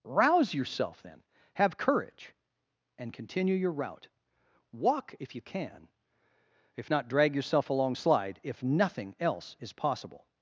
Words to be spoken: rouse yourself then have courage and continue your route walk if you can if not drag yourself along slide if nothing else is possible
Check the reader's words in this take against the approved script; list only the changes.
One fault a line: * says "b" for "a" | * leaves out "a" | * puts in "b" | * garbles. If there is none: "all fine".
all fine